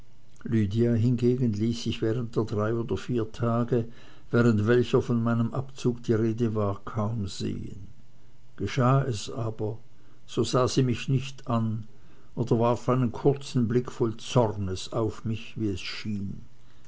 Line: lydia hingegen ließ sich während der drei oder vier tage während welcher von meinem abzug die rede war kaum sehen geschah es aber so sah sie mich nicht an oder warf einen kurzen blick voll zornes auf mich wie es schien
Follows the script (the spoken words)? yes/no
yes